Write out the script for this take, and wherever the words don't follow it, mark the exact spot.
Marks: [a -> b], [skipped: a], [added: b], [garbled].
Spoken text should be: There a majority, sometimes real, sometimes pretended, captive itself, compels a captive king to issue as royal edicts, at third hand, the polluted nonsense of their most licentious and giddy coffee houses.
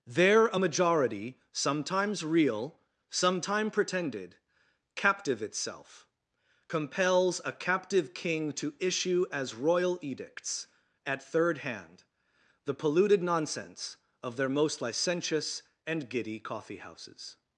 There a majority, sometimes real, [sometimes -> sometime] pretended, captive itself, compels a captive king to issue as royal edicts, at third hand, the polluted nonsense of their most licentious and giddy coffee houses.